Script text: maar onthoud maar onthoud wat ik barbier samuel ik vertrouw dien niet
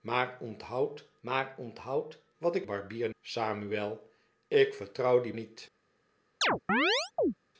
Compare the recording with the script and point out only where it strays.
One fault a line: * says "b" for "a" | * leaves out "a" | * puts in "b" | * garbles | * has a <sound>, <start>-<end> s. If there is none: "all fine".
* has a chirp, 6.4-7.3 s